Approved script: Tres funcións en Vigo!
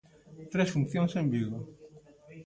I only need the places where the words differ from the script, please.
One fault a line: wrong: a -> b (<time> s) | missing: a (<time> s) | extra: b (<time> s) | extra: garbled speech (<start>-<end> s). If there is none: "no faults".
no faults